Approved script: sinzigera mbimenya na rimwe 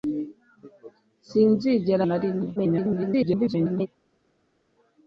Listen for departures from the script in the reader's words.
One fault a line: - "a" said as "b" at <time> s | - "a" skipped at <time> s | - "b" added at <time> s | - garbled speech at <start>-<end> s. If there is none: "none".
- "mbimenya" skipped at 2.0 s
- garbled speech at 2.6-3.9 s